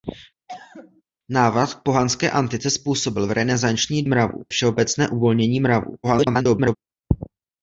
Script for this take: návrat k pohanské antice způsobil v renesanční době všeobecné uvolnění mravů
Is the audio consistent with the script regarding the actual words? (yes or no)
no